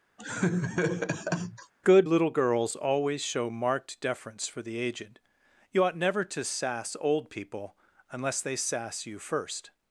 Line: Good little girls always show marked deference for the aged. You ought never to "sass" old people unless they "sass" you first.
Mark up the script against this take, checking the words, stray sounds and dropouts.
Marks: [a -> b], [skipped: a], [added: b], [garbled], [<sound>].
[laugh] Good little girls always show marked deference for the aged. You ought never to "sass" old people unless they "sass" you first.